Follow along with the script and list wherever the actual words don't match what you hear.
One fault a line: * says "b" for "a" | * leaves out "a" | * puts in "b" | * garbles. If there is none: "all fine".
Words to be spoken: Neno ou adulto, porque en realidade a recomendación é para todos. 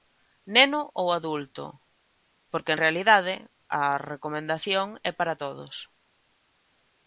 all fine